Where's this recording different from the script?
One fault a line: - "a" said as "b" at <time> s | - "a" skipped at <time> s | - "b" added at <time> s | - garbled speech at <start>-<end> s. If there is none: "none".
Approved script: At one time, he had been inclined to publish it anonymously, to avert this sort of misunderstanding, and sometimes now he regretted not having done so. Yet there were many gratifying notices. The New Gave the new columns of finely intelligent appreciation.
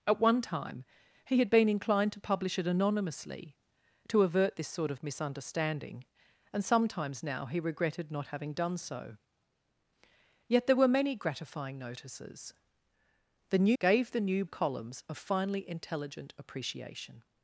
none